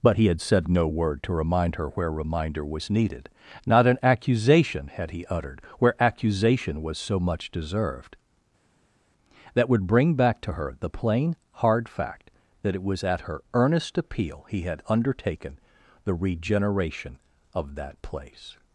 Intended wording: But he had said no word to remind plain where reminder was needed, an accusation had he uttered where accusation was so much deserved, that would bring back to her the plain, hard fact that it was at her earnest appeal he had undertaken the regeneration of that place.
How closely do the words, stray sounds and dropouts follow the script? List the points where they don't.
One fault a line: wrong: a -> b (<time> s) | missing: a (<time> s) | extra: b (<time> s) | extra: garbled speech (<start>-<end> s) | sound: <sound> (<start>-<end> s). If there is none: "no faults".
wrong: plain -> her (1.8 s)
extra: not (3.7 s)